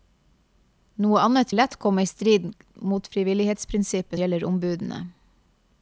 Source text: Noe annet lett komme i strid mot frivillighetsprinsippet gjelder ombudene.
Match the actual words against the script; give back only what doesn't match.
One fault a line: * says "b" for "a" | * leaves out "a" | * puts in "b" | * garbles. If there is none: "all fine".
all fine